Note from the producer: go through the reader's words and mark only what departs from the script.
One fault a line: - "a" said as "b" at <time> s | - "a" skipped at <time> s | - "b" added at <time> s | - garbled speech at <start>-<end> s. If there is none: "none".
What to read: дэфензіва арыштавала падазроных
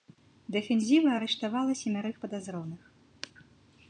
- "семярых" added at 1.8 s